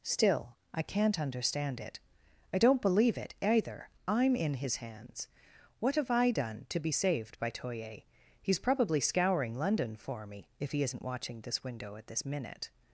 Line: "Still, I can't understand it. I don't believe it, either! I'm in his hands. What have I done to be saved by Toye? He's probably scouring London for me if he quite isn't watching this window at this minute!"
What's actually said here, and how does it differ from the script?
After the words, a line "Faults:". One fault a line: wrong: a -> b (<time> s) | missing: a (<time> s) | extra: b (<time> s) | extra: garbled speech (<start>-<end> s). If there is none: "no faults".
"Still, I can't understand it. I don't believe it, either! I'm in his hands. What have I done to be saved by Toye? He's probably scouring London for me if he isn't watching this window at this minute!"
Faults:
missing: quite (10.8 s)